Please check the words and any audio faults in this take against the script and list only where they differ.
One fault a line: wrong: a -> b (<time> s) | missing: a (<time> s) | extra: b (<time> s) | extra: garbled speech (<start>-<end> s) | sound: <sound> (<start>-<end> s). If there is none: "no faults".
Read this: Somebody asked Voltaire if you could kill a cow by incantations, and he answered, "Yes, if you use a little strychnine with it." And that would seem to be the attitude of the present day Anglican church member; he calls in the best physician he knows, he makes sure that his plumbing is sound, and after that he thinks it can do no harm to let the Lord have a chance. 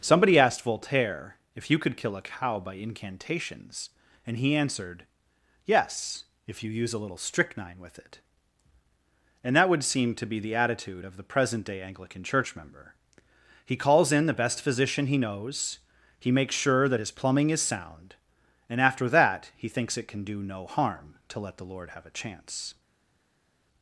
no faults